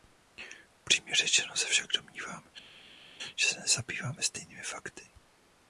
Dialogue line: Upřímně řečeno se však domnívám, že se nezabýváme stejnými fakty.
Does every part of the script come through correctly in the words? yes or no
yes